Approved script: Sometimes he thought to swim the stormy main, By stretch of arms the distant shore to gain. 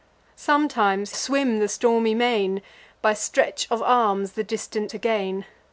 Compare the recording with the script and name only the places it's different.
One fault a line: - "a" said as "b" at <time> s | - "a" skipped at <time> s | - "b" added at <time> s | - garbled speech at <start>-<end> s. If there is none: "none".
- "he thought to" skipped at 1.1 s
- "shore" skipped at 4.9 s